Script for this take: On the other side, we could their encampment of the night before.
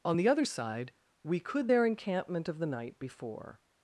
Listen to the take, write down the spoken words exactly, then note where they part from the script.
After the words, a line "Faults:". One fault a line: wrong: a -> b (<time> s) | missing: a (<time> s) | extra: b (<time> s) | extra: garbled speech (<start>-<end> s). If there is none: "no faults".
On the other side, we could their encampment of the night before.
Faults:
no faults